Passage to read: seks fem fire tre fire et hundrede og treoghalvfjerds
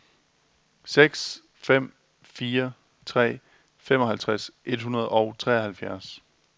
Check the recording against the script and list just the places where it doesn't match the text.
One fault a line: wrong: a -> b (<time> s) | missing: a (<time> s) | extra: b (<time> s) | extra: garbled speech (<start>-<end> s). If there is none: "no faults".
wrong: fire -> femoghalvtreds (3.8 s)